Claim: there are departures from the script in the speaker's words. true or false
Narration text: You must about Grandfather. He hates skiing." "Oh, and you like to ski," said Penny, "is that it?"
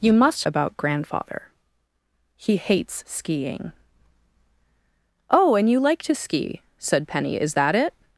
false